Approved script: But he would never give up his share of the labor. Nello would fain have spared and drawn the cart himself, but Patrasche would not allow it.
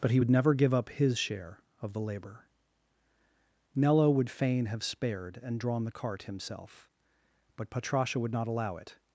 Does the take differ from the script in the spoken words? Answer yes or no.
no